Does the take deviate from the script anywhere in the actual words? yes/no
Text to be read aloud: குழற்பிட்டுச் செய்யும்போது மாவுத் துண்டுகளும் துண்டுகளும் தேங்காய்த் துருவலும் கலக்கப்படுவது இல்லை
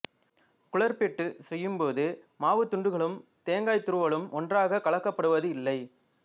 yes